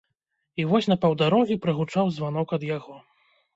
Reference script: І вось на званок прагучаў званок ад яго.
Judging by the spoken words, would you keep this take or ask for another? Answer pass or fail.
fail